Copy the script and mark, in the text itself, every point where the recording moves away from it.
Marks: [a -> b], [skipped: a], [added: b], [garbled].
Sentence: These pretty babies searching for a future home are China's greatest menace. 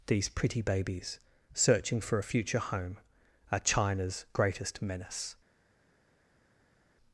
These pretty babies searching for a future home are China's greatest menace.